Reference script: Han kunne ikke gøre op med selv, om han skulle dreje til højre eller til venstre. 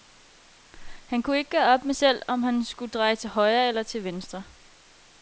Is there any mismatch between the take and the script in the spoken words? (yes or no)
no